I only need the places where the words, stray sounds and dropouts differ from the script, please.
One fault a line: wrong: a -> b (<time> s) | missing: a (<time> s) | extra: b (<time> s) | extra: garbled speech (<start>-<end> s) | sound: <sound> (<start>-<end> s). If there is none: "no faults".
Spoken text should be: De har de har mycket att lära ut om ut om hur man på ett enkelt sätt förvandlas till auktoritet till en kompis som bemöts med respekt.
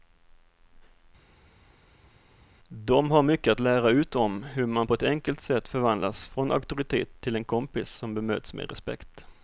missing: de har (3.2 s)
missing: ut om (4.4 s)
wrong: till -> från (6.3 s)